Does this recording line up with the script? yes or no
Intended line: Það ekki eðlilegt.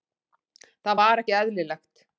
no